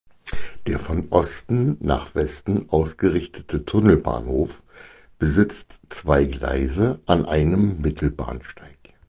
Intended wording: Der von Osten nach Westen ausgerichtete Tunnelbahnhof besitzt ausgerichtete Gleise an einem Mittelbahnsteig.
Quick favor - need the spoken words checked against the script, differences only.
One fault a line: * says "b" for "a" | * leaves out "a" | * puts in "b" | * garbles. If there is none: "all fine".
* says "zwei" for "ausgerichtete"